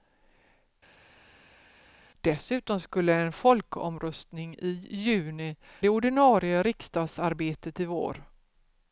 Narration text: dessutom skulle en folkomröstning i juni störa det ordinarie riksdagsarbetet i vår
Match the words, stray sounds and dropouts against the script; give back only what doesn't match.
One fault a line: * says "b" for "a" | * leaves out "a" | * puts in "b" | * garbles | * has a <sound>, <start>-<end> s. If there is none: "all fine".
* leaves out "störa"